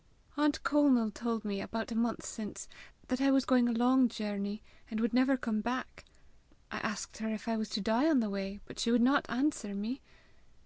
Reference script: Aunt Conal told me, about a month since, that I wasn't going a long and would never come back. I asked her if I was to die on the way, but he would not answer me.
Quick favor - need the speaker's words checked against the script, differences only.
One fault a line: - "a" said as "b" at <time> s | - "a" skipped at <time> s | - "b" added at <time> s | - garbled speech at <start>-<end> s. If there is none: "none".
- "wasn't" said as "was" at 3.3 s
- "journey" added at 4.1 s
- "he" said as "she" at 8.8 s